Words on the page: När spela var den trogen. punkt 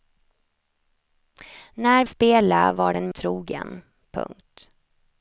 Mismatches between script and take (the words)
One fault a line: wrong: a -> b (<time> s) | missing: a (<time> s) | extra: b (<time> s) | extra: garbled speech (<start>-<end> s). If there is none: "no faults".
no faults